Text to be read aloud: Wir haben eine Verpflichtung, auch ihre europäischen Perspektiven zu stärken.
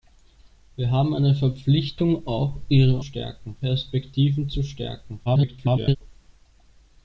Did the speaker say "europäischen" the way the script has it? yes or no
no